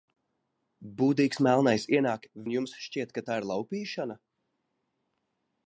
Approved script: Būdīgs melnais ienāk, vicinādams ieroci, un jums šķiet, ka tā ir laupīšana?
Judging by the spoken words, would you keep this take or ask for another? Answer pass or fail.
fail